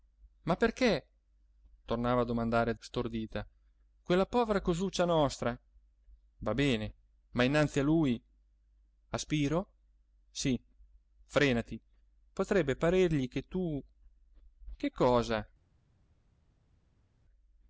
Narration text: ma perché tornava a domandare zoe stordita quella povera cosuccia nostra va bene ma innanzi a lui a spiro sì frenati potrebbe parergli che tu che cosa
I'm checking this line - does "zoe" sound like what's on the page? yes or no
no